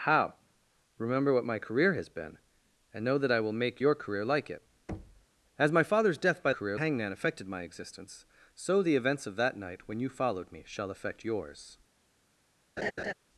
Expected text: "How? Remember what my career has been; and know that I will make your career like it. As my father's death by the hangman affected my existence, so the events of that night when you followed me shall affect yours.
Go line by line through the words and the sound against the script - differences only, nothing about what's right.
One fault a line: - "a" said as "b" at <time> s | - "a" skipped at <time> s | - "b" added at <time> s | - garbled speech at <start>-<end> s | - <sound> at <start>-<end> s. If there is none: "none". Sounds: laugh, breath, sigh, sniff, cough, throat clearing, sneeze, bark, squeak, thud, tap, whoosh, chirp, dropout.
- thud at 4.9-5.3 s
- "the" said as "career" at 6.5 s
- laugh at 12.8-13.1 s